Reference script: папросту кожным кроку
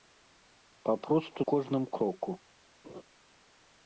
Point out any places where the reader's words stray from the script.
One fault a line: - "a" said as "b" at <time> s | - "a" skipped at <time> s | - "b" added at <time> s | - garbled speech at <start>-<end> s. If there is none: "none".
none